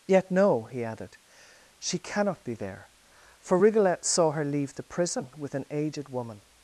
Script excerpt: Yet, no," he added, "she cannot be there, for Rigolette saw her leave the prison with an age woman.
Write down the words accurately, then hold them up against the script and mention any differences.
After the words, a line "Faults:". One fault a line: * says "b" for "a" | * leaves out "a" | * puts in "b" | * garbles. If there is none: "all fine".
Yet, no," he added, "she cannot be there, for Rigolette saw her leave the prison with an aged woman.
Faults:
* says "aged" for "age"